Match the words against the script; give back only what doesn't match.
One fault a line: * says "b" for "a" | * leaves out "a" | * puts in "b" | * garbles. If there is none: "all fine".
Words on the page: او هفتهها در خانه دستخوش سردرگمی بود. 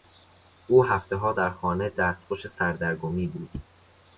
all fine